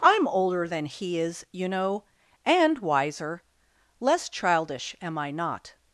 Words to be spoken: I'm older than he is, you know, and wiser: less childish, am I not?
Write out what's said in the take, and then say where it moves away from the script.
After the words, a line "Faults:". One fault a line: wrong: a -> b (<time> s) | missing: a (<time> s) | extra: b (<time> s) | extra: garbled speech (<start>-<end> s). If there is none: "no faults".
I'm older than he is, you know, and wiser: less childish, am I not?
Faults:
no faults